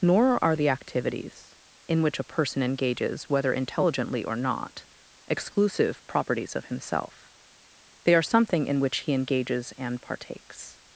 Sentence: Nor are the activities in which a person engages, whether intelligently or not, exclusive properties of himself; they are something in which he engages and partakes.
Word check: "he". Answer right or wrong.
right